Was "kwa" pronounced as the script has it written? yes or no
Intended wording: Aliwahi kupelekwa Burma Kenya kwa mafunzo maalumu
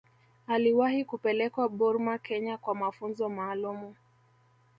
yes